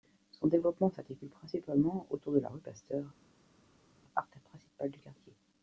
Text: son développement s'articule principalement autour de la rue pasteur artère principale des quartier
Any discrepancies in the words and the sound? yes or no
yes